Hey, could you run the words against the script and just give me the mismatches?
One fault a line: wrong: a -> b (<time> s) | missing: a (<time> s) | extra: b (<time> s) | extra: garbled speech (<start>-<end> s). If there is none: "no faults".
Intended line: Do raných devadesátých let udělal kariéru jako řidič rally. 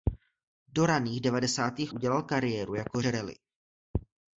missing: let (1.9 s)
missing: řidič (3.0 s)